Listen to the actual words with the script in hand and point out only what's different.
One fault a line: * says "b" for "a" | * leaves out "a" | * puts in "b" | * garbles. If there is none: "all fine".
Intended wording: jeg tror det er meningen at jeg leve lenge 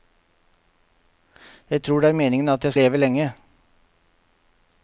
all fine